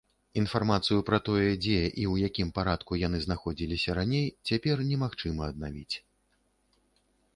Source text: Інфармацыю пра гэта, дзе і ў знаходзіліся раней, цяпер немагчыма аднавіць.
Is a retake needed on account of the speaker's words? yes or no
yes